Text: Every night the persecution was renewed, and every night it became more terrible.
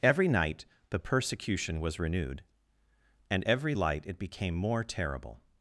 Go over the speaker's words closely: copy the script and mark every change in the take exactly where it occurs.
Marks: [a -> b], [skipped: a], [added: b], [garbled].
Every night the persecution was renewed, and every [night -> light] it became more terrible.